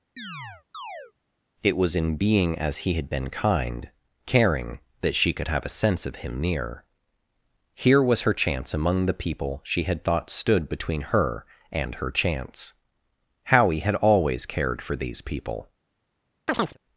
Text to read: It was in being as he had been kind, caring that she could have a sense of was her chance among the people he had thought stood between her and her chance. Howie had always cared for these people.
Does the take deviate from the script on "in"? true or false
false